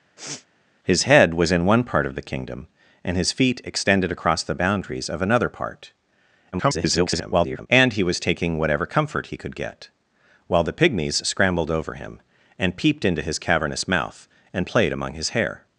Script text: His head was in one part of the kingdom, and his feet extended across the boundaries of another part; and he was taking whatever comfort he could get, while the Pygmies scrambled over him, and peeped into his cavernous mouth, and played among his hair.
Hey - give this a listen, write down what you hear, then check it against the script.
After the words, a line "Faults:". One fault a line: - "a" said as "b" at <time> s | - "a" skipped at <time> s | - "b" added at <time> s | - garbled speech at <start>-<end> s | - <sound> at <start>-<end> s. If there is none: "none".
His head was in one part of the kingdom, and his feet extended across the boundaries of another part; [garbled] and he was taking whatever comfort he could get, while the Pygmies scrambled over him, and peeped into his cavernous mouth, and played among his hair.
Faults:
- sniff at 0.2-0.5 s
- garbled speech at 6.5-7.7 s